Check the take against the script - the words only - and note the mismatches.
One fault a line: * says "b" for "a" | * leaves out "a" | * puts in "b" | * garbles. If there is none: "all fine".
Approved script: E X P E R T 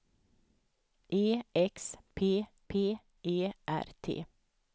* puts in "P"